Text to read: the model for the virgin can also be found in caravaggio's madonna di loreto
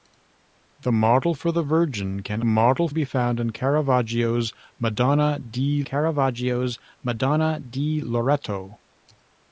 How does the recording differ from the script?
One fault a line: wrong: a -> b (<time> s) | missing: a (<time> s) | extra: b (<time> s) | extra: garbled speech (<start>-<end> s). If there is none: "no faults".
wrong: also -> model (2.4 s)
extra: caravaggio's madonna di (5.8 s)